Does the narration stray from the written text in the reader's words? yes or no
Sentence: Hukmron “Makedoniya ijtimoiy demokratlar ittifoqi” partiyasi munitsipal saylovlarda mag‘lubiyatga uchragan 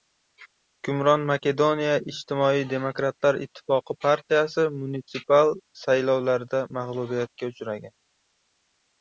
no